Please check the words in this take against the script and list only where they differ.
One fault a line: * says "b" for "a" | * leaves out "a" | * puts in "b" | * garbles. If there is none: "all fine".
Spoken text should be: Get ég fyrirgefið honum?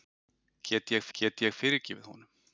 * puts in "get ég"